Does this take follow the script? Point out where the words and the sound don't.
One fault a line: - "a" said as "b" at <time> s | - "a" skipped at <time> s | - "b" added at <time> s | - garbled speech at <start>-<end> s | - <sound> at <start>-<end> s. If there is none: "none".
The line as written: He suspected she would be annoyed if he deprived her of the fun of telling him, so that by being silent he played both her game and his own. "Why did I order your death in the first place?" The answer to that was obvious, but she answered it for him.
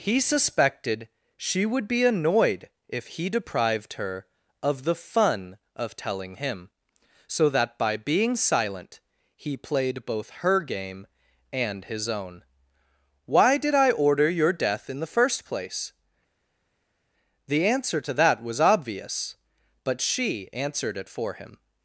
none